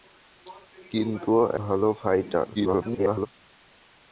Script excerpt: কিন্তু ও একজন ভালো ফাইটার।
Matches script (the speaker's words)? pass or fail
fail